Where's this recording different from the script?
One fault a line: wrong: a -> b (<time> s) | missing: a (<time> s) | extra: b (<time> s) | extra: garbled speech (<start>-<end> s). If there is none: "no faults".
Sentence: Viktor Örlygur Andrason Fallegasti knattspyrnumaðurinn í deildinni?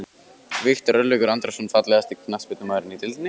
no faults